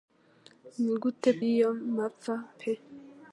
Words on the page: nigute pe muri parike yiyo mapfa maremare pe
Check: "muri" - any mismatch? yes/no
yes